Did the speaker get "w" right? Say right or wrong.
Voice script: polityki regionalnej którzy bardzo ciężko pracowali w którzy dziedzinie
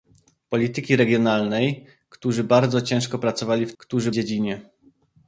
right